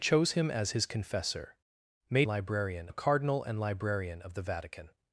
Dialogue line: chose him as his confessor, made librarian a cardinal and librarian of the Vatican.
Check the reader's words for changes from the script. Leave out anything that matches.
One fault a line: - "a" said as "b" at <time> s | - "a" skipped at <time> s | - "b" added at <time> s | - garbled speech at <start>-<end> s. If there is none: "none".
none